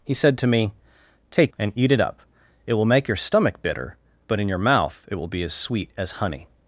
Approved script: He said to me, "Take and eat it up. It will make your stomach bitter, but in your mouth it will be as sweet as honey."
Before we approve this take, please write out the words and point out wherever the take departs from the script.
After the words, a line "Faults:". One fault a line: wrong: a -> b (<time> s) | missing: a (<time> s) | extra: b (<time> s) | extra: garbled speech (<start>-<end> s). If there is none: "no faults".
He said to me, "Take and eat it up. It will make your stomach bitter, but in your mouth it will be as sweet as honey."
Faults:
no faults